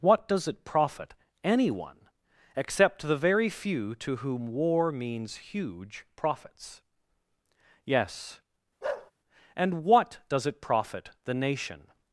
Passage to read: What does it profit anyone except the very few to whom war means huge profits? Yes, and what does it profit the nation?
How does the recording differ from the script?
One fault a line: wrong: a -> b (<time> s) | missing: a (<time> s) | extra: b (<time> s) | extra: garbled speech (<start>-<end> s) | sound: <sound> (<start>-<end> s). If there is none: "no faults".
sound: bark (8.8-9.1 s)